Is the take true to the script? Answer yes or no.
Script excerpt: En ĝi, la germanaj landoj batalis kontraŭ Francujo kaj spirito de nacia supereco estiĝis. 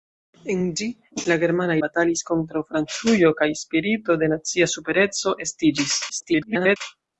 no